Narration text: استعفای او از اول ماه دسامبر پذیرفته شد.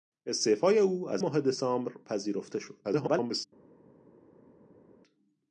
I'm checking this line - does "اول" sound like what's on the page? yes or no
no